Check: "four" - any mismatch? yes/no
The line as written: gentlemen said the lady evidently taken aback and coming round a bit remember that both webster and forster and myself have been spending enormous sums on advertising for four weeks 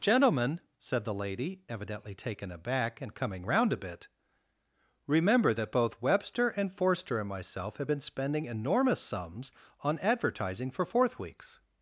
yes